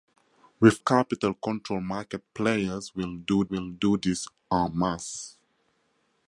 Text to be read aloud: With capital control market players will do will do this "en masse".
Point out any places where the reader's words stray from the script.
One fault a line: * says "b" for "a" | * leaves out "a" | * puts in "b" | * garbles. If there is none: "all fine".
all fine